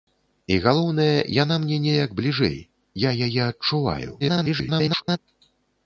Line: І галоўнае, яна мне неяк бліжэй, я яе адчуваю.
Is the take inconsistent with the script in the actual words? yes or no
yes